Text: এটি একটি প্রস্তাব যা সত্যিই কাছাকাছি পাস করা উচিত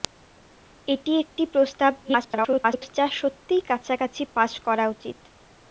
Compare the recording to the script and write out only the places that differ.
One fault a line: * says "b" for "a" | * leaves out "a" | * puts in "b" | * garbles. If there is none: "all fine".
* garbles